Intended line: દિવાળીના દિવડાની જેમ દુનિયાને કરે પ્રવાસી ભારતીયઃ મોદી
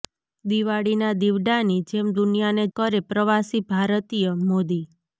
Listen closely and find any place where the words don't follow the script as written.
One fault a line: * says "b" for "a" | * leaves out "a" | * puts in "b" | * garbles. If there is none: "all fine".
all fine